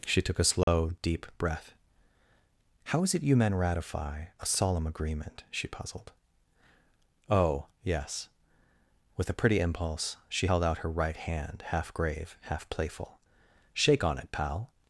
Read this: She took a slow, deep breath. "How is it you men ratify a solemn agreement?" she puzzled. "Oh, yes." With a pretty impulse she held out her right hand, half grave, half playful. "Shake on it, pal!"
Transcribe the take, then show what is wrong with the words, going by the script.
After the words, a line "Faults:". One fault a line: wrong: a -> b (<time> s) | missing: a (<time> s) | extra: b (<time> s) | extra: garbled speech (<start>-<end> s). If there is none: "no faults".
She took a slow, deep breath. "How is it you men ratify a solemn agreement?" she puzzled. "Oh, yes." With a pretty impulse she held out her right hand, half grave, half playful. "Shake on it, pal!"
Faults:
no faults